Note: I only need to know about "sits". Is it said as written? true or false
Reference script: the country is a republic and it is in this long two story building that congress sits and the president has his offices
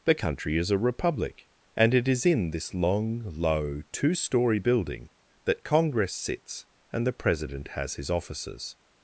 true